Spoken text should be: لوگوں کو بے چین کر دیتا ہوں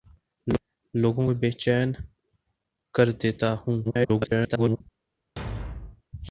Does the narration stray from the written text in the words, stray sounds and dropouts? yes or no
yes